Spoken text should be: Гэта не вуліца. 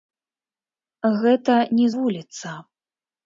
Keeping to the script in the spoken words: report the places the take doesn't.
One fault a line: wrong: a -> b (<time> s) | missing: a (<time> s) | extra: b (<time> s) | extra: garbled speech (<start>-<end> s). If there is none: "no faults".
no faults